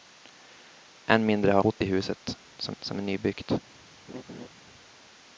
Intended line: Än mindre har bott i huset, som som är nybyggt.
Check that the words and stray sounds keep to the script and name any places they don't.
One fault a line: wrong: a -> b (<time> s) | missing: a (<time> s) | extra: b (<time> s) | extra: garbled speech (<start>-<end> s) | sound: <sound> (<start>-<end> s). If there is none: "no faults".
sound: laugh (4.1-4.5 s)